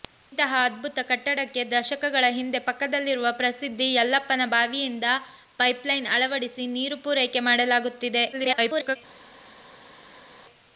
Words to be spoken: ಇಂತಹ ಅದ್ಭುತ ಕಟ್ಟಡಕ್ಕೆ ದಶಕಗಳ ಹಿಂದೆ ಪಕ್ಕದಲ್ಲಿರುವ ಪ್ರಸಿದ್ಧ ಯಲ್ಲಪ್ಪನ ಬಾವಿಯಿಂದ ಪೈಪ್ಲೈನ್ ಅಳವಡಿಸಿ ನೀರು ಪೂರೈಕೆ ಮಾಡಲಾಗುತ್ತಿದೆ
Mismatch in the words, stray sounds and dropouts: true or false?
true